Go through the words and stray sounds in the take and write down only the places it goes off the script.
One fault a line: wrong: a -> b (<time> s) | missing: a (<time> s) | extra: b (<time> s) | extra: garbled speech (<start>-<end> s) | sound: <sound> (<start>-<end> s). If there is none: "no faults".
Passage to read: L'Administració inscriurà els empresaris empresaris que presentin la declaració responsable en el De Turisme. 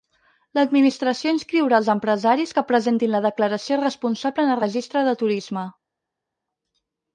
missing: empresaris (2.5 s)
extra: Registre (4.6 s)